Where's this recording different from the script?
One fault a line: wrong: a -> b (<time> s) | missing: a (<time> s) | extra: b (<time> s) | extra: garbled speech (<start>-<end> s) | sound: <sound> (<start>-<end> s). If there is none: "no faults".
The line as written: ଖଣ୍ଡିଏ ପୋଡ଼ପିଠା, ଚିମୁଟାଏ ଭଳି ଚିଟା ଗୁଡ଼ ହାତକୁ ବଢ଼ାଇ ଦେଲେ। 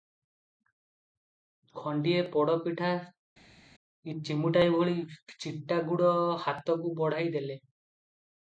no faults